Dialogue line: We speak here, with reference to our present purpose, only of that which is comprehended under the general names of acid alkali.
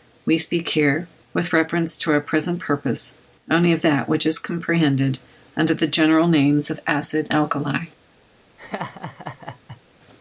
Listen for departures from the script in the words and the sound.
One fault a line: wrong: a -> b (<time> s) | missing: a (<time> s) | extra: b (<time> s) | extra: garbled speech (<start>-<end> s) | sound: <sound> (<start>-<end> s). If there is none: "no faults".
sound: laugh (8.6-9.8 s)